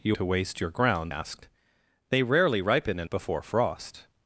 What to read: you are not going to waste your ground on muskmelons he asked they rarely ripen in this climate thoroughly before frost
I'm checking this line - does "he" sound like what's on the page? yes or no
no